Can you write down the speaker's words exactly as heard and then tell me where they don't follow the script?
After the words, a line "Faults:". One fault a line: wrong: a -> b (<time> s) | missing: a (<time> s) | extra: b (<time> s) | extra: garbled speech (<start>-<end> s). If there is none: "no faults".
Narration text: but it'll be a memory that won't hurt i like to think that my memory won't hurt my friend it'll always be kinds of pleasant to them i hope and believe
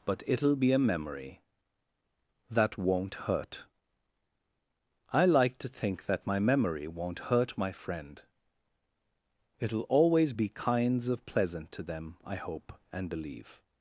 but it'll be a memory that won't hurt i like to think that my memory won't hurt my friend it'll always be kinds of pleasant to them i hope and believe
Faults:
no faults